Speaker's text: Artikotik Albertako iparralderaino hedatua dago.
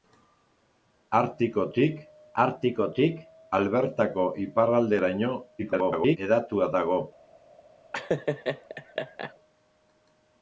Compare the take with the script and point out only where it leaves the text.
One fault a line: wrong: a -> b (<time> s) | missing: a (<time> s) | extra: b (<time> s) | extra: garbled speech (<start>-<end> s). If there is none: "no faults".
extra: artikotik (2.4 s)
extra: garbled speech (5.6-6.2 s)